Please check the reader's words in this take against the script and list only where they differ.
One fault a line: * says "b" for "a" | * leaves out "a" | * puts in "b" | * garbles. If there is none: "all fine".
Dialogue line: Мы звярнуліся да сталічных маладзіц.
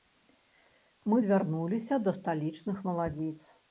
all fine